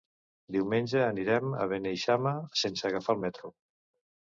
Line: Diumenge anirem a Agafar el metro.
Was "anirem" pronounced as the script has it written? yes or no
yes